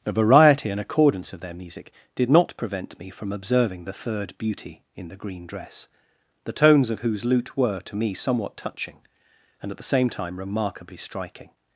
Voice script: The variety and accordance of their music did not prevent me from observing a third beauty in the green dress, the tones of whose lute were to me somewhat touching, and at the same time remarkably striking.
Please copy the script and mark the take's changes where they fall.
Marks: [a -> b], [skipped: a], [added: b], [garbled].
The variety and accordance of their music did not prevent me from observing [a -> the] third beauty in the green dress, the tones of whose lute were to me somewhat touching, and at the same time remarkably striking.